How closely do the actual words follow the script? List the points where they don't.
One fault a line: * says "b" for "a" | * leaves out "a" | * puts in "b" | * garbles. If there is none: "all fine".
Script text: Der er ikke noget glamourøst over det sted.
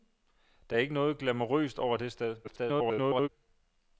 * garbles